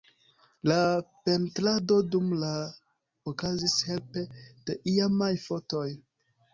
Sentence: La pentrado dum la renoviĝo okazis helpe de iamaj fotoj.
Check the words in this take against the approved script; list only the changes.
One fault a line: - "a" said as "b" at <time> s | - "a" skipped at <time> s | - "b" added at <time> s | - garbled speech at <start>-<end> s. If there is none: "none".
- "renoviĝo" skipped at 2.5 s